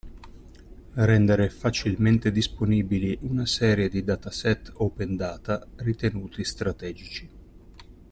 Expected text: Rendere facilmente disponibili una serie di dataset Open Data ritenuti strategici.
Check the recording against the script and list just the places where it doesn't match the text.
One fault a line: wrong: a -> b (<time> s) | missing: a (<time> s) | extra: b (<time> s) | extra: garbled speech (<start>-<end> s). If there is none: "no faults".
no faults